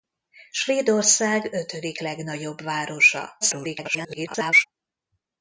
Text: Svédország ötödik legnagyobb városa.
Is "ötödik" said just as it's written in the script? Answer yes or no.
yes